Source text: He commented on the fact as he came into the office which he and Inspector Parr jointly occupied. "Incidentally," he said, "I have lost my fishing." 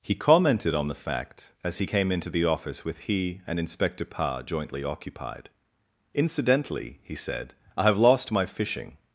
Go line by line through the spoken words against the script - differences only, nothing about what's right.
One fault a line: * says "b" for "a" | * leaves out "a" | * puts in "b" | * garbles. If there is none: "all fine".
* says "with" for "which"